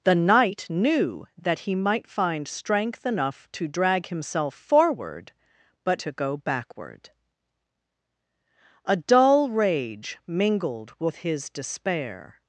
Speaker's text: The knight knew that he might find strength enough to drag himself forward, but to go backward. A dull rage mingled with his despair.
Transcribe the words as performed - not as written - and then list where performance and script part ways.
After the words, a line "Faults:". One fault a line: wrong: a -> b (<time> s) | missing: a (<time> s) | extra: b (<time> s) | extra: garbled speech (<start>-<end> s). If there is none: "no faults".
The knight knew that he might find strength enough to drag himself forward, but to go backward. A dull rage mingled with his despair.
Faults:
no faults